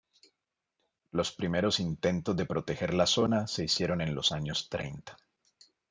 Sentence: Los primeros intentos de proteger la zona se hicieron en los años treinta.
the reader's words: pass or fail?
pass